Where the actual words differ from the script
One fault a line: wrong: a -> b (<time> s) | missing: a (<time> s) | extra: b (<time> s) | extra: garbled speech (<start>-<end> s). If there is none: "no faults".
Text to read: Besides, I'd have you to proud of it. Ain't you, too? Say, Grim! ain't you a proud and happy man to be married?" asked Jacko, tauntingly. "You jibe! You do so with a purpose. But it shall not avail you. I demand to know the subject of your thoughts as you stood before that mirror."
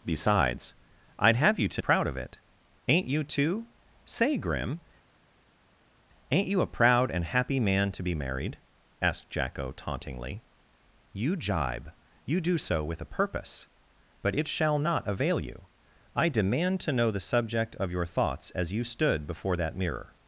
no faults